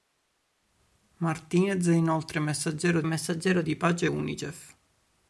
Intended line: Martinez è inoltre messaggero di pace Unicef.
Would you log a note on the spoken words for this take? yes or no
yes